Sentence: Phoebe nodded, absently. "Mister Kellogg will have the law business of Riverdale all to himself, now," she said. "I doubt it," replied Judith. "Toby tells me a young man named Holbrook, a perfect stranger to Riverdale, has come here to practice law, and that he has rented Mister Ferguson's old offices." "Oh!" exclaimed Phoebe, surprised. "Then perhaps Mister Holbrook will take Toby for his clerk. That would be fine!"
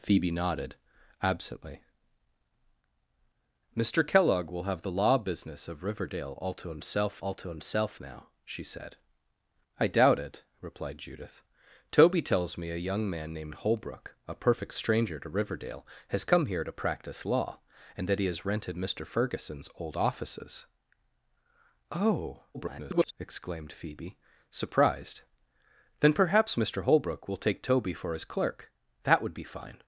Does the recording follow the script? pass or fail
fail